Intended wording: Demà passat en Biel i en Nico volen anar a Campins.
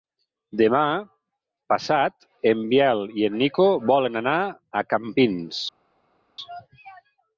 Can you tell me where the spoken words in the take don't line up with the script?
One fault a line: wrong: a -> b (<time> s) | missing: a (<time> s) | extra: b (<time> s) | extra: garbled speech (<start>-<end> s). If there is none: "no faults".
no faults